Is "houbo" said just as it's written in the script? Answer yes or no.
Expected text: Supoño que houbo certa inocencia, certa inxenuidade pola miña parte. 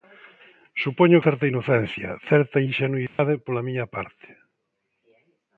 no